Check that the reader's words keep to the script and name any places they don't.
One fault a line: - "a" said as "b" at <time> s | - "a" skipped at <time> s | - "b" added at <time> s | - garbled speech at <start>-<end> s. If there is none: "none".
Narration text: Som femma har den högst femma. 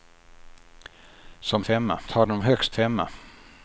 none